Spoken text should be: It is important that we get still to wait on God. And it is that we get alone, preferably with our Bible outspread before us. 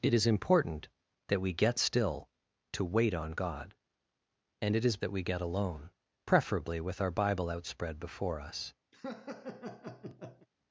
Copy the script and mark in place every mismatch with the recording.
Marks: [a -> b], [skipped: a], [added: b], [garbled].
It is important that we get still to wait on God. And it is that we get alone, preferably with our Bible outspread before us.